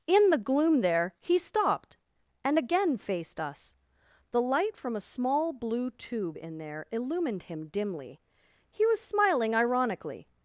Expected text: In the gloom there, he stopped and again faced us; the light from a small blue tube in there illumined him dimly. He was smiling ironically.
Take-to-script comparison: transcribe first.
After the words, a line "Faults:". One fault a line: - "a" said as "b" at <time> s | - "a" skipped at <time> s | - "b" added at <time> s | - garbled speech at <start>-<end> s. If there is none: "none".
In the gloom there, he stopped and again faced us; the light from a small blue tube in there illumined him dimly. He was smiling ironically.
Faults:
none